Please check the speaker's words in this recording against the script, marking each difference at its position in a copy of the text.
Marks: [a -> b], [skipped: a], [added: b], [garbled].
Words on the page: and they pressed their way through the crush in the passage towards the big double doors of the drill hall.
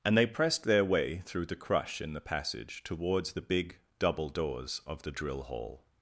and they pressed their way through the crush in the passage towards the big double doors of the drill hall.